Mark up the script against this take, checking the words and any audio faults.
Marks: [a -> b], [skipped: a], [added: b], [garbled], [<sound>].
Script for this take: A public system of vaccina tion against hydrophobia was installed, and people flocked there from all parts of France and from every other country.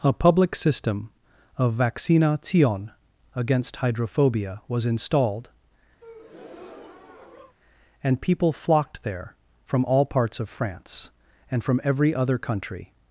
A public system of vaccina tion against hydrophobia was installed, [breath] and people flocked there from all parts of France and from every other country.